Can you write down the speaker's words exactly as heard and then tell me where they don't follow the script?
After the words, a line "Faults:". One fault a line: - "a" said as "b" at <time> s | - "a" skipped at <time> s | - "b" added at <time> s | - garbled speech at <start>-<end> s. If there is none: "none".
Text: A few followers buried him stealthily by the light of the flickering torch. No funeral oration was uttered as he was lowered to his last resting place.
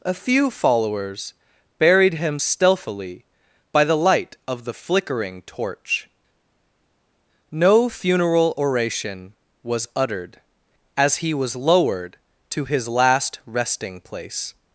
A few followers buried him stealthily by the light of the flickering torch. No funeral oration was uttered as he was lowered to his last resting place.
Faults:
none